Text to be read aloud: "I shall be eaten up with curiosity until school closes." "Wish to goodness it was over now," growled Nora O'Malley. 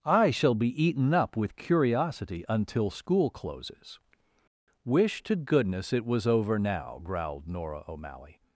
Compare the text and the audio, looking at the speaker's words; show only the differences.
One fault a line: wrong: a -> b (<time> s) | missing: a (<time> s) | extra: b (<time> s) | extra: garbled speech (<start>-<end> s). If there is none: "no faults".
no faults